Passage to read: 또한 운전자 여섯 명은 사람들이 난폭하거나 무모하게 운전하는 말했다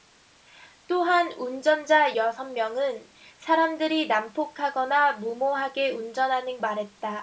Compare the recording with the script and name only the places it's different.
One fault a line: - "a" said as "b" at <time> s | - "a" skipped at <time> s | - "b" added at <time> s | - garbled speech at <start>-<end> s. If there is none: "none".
none